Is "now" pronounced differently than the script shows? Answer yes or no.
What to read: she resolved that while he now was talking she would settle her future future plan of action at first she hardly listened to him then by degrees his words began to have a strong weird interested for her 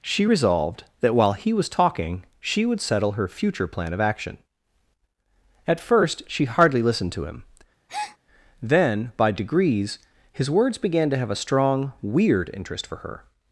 yes